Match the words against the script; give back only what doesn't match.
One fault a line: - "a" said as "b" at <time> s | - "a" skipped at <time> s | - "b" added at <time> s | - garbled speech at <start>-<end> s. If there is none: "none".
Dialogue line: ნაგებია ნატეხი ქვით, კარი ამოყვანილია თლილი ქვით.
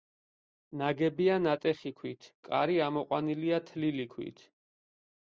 none